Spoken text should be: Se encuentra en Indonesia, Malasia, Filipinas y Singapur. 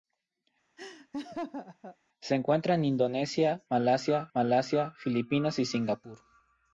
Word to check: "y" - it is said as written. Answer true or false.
true